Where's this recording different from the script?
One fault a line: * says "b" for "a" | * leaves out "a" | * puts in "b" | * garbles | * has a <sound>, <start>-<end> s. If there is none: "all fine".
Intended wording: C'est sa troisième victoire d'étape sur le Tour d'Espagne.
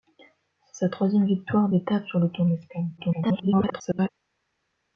* garbles